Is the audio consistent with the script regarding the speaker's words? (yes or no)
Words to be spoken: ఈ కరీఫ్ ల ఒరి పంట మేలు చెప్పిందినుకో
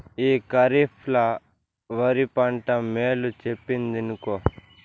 yes